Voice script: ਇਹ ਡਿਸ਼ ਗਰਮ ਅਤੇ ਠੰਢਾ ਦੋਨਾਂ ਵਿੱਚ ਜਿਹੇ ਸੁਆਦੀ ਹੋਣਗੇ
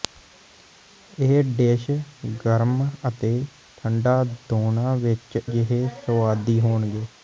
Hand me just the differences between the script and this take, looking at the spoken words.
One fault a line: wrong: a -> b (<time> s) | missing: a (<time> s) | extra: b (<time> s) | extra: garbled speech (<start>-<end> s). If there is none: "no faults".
no faults